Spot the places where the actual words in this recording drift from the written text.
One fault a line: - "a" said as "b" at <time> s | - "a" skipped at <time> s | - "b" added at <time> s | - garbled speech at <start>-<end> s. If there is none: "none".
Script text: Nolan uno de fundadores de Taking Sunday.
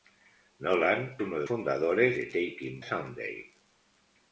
none